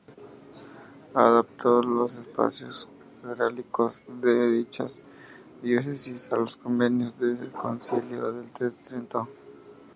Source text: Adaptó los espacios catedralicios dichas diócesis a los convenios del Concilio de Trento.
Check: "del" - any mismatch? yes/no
no